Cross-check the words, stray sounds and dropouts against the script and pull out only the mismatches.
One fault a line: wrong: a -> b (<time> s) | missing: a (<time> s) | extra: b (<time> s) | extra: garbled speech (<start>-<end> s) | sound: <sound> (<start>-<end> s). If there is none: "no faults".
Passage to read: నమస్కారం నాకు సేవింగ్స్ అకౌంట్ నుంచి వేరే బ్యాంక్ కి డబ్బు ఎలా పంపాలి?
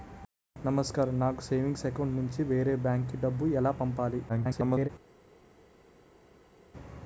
extra: garbled speech (4.3-4.9 s)